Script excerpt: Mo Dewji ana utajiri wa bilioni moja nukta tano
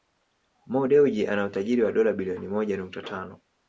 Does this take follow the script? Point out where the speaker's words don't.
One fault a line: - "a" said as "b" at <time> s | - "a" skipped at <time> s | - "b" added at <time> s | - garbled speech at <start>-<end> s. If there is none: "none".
- "dola" added at 1.9 s